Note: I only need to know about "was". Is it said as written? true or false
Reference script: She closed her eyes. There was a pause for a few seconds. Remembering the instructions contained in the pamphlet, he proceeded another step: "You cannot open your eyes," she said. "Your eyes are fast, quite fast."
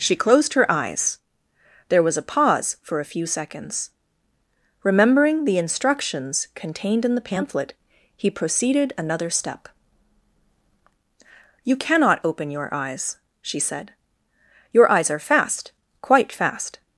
true